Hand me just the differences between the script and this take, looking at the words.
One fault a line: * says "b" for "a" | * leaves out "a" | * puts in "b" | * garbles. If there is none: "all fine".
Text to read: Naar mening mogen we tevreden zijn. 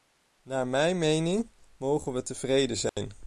* puts in "mijn"